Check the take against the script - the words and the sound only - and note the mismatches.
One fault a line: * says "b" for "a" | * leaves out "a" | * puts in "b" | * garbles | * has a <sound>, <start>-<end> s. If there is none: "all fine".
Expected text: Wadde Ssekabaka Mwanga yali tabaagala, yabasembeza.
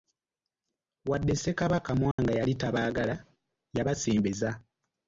* has a dropout, 2.1-2.2 s